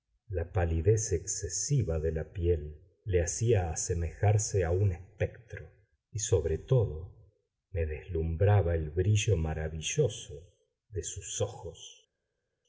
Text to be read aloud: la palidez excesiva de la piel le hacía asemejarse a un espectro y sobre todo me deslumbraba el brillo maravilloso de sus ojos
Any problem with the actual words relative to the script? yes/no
no